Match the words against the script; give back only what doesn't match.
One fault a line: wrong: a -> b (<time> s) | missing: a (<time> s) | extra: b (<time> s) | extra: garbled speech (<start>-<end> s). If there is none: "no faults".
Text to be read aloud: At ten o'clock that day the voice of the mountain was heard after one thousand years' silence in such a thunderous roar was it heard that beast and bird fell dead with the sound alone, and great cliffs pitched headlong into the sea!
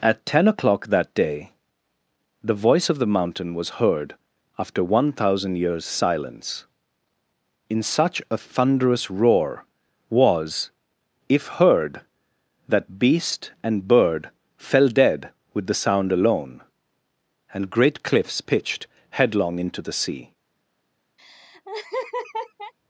wrong: it -> if (11.3 s)